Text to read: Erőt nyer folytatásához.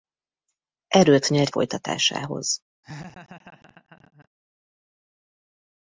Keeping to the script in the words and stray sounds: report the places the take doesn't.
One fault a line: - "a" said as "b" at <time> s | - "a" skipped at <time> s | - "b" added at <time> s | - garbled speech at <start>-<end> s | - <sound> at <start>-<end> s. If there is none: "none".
- laugh at 2.8-4.3 s